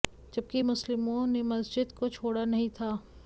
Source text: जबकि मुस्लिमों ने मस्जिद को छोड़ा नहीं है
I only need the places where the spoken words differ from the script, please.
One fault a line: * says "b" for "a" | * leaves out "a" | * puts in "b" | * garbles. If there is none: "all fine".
* says "था" for "है"